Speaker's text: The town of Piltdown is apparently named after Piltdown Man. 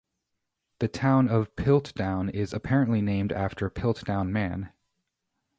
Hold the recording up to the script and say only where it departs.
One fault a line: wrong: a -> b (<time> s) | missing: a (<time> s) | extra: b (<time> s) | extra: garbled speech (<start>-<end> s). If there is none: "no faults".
no faults